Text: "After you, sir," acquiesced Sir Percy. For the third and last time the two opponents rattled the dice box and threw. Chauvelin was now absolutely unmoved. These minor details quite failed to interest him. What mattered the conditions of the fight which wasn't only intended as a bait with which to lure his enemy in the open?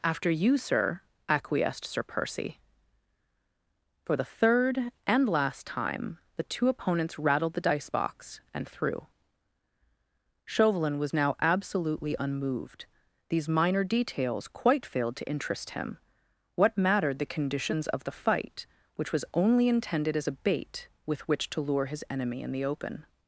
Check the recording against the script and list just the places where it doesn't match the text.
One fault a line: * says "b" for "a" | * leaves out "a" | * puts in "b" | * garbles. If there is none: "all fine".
* says "was" for "wasn't"